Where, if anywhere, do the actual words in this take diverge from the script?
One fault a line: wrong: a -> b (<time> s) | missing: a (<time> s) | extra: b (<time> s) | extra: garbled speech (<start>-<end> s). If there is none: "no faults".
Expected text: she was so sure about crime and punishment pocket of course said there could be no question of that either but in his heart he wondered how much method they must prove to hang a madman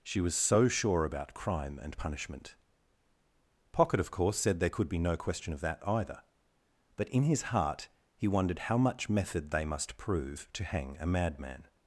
no faults